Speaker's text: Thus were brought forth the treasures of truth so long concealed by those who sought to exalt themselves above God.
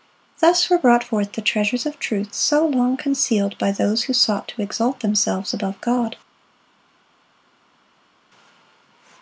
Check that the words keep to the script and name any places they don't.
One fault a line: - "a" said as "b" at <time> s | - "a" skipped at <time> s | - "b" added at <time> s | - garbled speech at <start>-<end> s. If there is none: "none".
none